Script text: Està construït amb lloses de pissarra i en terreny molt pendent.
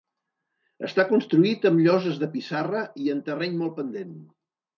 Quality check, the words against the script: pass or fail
pass